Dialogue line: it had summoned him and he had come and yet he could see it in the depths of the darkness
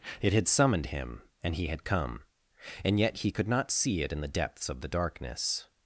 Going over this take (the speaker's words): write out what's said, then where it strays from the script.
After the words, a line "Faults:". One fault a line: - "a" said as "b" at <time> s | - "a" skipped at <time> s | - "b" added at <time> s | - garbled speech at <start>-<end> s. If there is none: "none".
it had summoned him and he had come and yet he could not see it in the depths of the darkness
Faults:
- "not" added at 3.5 s